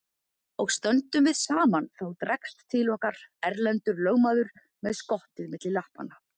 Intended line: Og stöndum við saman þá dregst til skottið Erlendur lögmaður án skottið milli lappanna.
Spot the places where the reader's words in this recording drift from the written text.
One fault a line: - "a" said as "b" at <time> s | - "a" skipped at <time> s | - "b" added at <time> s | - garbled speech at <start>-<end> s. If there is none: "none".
- "skottið" said as "okkar" at 3.0 s
- "án" said as "með" at 4.9 s